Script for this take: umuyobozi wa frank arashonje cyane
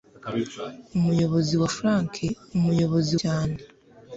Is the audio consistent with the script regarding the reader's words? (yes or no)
no